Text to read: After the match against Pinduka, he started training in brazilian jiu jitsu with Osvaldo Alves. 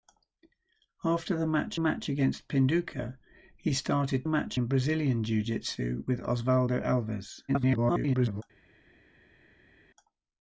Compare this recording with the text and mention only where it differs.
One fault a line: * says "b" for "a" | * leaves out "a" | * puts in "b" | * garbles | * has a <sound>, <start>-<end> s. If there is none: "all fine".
* puts in "match"
* says "match" for "training"
* garbles